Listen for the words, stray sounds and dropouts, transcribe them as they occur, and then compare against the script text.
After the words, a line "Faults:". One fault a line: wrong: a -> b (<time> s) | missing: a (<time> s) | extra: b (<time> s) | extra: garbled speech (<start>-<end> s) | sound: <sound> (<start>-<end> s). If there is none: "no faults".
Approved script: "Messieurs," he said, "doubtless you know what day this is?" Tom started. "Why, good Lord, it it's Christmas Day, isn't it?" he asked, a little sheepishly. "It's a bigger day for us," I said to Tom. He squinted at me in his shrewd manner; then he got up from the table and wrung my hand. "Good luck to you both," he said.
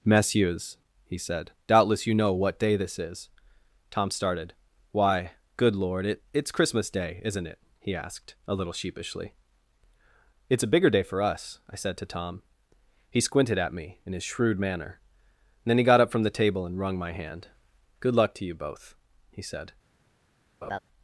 "Messieurs," he said, "doubtless you know what day this is?" Tom started. "Why, good Lord, it it's Christmas Day, isn't it?" he asked, a little sheepishly. "It's a bigger day for us," I said to Tom. He squinted at me in his shrewd manner; then he got up from the table and wrung my hand. "Good luck to you both," he said.
Faults:
sound: laugh (20.6-20.8 s)